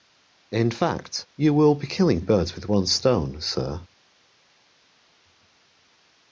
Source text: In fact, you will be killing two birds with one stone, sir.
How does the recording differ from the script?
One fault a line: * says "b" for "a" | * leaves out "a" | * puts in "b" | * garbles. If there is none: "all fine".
* leaves out "two"